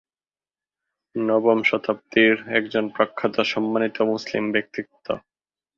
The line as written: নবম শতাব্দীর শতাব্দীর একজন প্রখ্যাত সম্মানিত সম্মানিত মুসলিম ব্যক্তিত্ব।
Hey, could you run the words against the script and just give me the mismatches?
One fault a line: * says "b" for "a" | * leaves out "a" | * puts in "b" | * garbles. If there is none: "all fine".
* leaves out "শতাব্দীর"
* leaves out "সম্মানিত"